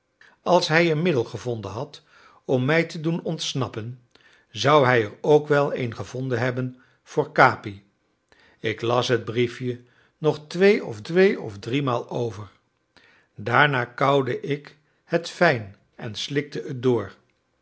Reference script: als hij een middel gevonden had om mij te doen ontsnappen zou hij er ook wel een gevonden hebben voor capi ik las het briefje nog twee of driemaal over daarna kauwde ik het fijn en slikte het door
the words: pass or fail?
fail